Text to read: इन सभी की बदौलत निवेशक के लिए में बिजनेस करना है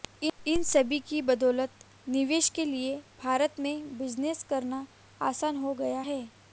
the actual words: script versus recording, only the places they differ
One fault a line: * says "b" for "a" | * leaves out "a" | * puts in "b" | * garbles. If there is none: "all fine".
* puts in "भारत"
* puts in "आसान हो गया"